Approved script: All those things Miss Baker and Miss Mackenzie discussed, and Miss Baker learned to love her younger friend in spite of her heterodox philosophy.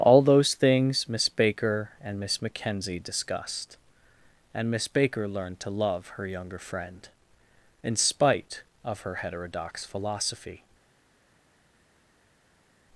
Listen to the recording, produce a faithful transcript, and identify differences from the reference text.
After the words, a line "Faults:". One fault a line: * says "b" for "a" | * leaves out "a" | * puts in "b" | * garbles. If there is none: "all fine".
All those things Miss Baker and Miss Mackenzie discussed, and Miss Baker learned to love her younger friend in spite of her heterodox philosophy.
Faults:
all fine